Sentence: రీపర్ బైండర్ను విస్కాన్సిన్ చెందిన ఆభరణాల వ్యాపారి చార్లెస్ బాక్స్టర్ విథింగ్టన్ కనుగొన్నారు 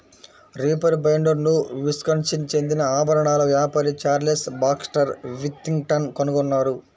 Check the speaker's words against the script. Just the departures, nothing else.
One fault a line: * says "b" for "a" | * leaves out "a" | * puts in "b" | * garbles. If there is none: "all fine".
all fine